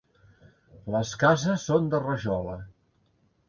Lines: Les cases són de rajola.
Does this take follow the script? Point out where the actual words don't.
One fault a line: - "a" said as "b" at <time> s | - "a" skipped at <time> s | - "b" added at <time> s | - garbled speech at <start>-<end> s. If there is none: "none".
none